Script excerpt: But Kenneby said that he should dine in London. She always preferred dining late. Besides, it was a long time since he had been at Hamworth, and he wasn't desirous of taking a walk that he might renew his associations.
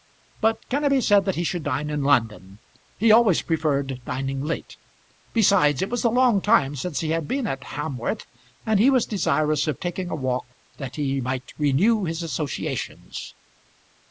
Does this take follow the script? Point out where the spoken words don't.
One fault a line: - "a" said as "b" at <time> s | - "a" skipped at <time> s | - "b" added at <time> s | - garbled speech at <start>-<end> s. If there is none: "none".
- "She" said as "He" at 3.0 s
- "wasn't" said as "was" at 8.9 s